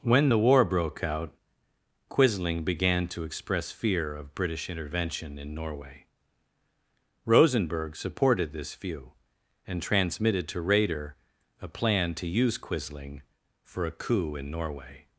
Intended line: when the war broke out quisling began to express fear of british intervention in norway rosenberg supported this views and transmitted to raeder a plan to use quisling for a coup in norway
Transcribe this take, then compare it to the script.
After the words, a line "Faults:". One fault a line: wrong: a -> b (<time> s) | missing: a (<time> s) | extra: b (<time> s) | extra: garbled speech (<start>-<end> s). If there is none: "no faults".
when the war broke out quisling began to express fear of british intervention in norway rosenberg supported this view and transmitted to raeder a plan to use quisling for a coup in norway
Faults:
wrong: views -> view (8.7 s)